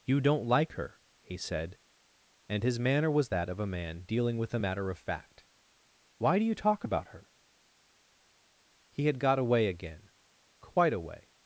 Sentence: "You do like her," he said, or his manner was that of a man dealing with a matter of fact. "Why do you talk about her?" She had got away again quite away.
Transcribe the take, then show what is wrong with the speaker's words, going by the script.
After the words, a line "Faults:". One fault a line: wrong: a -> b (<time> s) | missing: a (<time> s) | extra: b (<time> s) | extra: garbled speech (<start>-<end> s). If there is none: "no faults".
"You don't like her," he said, and his manner was that of a man dealing with a matter of fact. "Why do you talk about her?" He had got away again quite away.
Faults:
wrong: do -> don't (0.2 s)
wrong: or -> and (2.5 s)
wrong: She -> He (8.9 s)